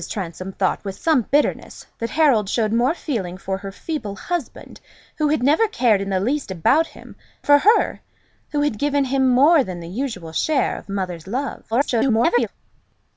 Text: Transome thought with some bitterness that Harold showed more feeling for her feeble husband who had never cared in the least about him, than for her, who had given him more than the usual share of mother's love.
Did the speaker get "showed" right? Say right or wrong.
right